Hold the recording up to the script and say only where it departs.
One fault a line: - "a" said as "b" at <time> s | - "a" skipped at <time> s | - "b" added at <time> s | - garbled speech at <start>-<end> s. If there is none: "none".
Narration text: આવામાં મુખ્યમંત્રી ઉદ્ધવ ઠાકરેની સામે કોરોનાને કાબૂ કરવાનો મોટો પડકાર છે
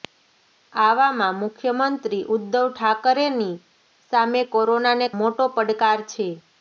- "કાબૂ કરવાનો" skipped at 5.1 s